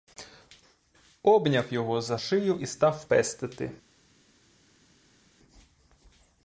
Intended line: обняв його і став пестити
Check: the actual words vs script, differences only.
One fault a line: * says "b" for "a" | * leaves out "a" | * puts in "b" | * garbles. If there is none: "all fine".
* puts in "за шию"